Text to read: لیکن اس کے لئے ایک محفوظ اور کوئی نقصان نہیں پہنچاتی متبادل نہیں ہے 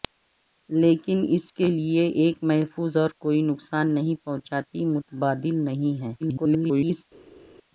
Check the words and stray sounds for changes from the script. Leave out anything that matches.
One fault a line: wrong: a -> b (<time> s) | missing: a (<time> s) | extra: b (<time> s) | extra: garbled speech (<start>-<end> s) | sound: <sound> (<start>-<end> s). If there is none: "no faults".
extra: garbled speech (6.2-7.0 s)